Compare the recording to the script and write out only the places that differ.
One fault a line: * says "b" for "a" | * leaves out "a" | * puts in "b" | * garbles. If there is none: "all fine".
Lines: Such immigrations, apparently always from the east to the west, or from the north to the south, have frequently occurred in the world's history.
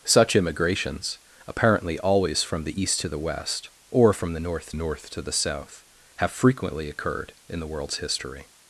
* puts in "north"